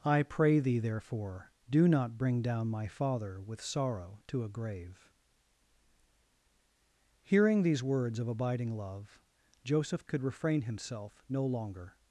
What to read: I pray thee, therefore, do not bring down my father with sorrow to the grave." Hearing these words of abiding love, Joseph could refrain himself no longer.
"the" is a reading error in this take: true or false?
true